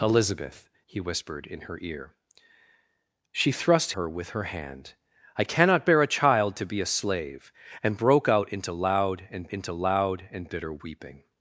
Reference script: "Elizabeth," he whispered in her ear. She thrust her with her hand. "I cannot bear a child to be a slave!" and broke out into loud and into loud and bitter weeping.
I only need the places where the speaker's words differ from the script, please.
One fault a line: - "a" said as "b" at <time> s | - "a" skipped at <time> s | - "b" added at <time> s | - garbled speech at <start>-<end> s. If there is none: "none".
none